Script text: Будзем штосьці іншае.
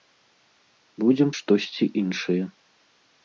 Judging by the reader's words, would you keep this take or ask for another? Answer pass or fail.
pass